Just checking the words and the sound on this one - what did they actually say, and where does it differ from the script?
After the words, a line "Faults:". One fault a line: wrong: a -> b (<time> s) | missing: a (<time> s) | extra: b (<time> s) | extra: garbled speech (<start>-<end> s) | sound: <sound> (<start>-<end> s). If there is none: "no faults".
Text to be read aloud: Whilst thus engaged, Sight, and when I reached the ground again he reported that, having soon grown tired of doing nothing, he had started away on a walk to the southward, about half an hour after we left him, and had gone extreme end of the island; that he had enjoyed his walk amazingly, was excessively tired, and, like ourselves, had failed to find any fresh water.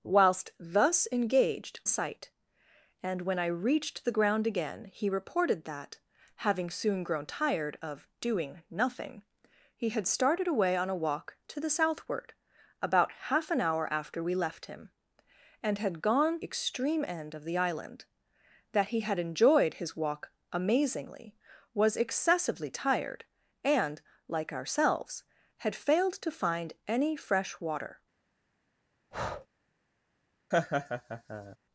Whilst thus engaged, Sight, and when I reached the ground again he reported that, having soon grown tired of doing nothing, he had started away on a walk to the southward, about half an hour after we left him, and had gone extreme end of the island; that he had enjoyed his walk amazingly, was excessively tired, and, like ourselves, had failed to find any fresh water.
Faults:
sound: breath (29.1-29.5 s)
sound: laugh (30.5-31.6 s)